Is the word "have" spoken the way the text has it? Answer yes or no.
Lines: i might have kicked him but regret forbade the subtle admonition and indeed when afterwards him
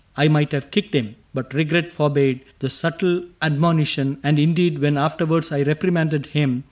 yes